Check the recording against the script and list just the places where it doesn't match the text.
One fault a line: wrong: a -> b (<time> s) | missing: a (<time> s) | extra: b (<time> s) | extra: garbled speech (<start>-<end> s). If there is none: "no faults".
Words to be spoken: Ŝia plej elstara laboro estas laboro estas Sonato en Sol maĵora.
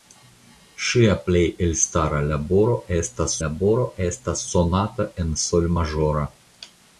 no faults